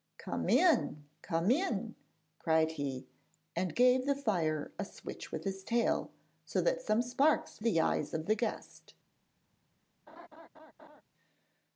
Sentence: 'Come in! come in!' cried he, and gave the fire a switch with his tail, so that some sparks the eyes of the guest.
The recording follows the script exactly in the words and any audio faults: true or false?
false